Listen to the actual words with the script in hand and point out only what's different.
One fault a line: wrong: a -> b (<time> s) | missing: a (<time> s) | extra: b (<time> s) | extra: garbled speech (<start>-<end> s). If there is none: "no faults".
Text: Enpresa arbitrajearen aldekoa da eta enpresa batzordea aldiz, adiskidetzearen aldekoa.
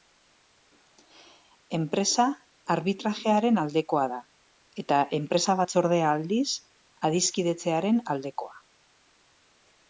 no faults